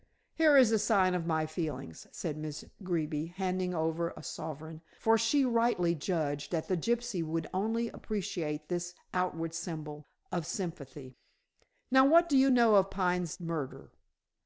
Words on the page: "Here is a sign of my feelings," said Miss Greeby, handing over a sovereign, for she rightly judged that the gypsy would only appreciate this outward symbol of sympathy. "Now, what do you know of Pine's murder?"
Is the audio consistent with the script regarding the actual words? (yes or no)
yes